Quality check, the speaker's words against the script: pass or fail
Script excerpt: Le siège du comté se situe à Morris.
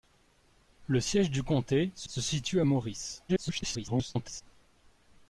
fail